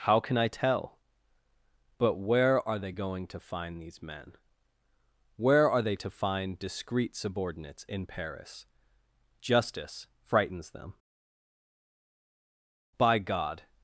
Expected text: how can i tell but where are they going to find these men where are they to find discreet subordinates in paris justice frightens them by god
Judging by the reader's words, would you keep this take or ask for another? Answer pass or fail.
pass